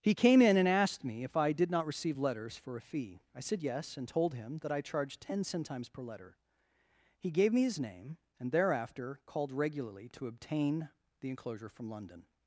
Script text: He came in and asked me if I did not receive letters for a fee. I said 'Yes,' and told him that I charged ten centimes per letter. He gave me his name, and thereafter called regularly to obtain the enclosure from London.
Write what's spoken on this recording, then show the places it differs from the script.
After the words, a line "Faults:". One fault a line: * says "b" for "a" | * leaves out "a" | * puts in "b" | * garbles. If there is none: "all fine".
He came in and asked me if I did not receive letters for a fee. I said 'Yes,' and told him that I charged ten centimes per letter. He gave me his name, and thereafter called regularly to obtain the enclosure from London.
Faults:
all fine